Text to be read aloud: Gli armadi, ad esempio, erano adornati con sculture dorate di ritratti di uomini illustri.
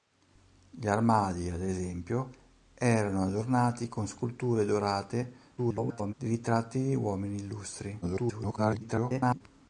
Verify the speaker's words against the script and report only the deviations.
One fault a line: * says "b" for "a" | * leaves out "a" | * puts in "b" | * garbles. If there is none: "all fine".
* garbles
* garbles